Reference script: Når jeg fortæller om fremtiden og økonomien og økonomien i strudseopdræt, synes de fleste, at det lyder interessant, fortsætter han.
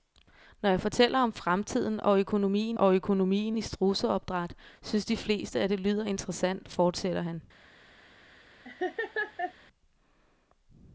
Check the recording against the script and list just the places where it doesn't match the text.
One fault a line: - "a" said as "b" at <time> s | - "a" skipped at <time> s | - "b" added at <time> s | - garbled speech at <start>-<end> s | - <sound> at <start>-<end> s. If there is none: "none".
- laugh at 8.6-9.5 s